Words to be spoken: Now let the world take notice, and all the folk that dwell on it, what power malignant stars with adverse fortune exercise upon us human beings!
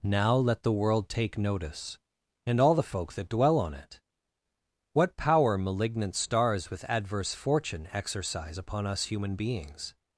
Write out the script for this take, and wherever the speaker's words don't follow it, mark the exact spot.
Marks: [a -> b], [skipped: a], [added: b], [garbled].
Now let the world take notice, and all the folk that dwell on it, what power malignant stars with adverse fortune exercise upon us human beings!